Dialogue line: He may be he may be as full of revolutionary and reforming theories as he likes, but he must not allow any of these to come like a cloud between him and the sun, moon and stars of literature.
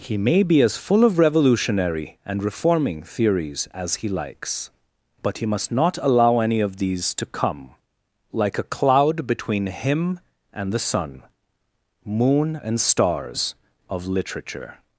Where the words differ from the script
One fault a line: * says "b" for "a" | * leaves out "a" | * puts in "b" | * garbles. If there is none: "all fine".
* leaves out "he may be"